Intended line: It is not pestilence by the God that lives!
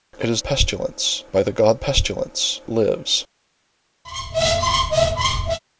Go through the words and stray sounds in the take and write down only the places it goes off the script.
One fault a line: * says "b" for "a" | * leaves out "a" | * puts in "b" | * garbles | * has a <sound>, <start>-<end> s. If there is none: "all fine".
* leaves out "not"
* says "pestilence" for "that"
* has a squeak, 4.0-5.6 s